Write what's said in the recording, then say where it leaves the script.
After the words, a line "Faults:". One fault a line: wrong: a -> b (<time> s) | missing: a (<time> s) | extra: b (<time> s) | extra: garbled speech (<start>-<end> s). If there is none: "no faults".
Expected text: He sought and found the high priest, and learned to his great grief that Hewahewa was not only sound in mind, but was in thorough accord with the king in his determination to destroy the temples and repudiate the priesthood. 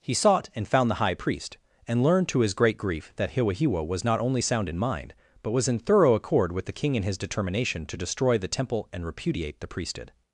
He sought and found the high priest, and learned to his great grief that Hewahewa was not only sound in mind, but was in thorough accord with the king in his determination to destroy the temple and repudiate the priesthood.
Faults:
wrong: temples -> temple (8.5 s)